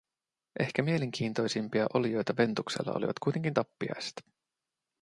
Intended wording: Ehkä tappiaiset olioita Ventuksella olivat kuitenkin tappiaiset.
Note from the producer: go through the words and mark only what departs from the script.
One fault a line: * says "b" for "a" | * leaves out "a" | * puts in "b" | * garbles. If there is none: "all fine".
* says "mielenkiintoisimpia" for "tappiaiset"